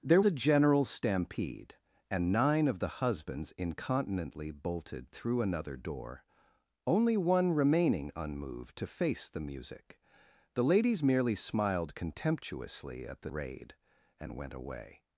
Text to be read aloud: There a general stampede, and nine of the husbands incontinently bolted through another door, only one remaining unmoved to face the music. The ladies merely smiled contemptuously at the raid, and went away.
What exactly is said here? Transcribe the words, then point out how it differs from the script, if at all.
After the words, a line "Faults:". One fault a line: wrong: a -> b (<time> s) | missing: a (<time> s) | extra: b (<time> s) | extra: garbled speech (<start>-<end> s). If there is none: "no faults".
There a general stampede, and nine of the husbands incontinently bolted through another door, only one remaining unmoved to face the music. The ladies merely smiled contemptuously at the raid, and went away.
Faults:
no faults